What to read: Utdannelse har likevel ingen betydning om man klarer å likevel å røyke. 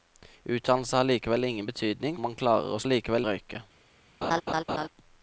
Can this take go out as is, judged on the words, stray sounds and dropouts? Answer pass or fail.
fail